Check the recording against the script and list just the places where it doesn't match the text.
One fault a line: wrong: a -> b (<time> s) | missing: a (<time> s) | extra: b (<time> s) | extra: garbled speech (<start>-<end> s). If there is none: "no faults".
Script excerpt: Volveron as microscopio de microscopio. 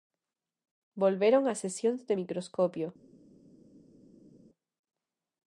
wrong: microscopio -> sesións (1.6 s)